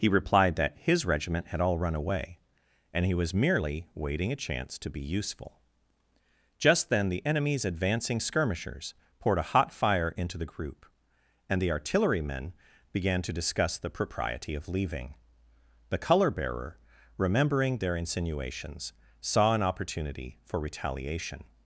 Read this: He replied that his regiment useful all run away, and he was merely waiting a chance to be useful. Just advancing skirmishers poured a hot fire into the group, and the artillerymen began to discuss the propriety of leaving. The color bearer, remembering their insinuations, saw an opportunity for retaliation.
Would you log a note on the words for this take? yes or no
yes